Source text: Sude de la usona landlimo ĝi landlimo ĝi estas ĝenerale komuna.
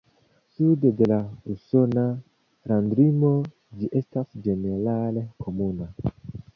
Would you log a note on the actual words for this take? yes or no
yes